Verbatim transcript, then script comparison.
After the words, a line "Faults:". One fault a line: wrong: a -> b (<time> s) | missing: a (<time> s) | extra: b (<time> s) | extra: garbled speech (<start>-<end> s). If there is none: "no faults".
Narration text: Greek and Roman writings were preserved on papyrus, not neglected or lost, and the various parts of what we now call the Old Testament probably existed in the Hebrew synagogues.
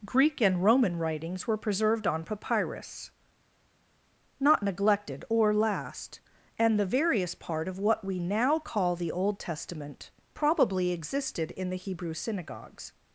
Greek and Roman writings were preserved on papyrus, not neglected or last, and the various part of what we now call the Old Testament probably existed in the Hebrew synagogues.
Faults:
wrong: lost -> last (5.5 s)
wrong: parts -> part (7.3 s)